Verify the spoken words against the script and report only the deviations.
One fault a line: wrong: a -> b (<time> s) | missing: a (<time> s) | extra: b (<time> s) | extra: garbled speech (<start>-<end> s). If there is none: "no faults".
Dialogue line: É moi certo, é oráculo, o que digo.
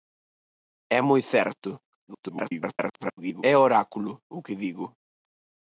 extra: garbled speech (2.1-3.4 s)